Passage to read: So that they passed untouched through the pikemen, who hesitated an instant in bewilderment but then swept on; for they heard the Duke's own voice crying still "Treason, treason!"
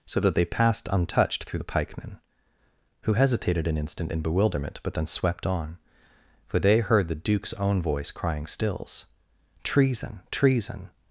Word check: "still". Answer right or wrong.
wrong